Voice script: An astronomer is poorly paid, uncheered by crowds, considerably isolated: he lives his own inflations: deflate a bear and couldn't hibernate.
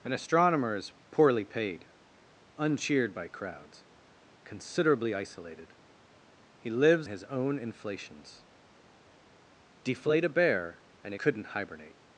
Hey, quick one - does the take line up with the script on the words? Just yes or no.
yes